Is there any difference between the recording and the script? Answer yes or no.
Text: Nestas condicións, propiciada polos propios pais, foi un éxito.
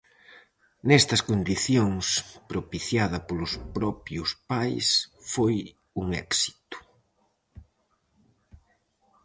no